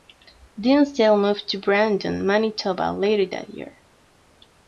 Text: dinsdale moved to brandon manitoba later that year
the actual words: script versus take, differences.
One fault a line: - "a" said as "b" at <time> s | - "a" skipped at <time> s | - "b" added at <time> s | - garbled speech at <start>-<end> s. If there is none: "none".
none